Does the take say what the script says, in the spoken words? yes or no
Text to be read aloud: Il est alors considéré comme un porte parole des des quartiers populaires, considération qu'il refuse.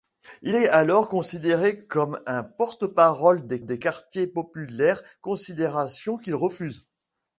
yes